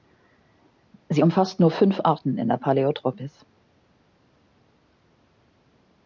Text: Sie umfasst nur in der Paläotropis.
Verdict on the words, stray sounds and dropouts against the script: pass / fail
fail